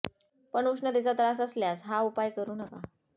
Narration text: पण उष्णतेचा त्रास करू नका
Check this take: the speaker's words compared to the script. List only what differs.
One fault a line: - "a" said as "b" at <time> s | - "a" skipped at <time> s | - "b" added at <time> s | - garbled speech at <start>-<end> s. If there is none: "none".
- "असल्यास हा उपाय" added at 1.4 s